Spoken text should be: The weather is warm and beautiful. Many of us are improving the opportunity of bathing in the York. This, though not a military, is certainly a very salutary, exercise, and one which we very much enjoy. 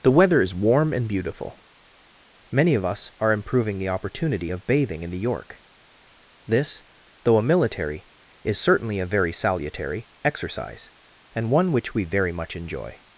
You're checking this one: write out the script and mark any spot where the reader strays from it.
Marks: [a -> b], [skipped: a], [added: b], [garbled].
The weather is warm and beautiful. Many of us are improving the opportunity of bathing in the York. This, though [skipped: not] a military, is certainly a very salutary, exercise, and one which we very much enjoy.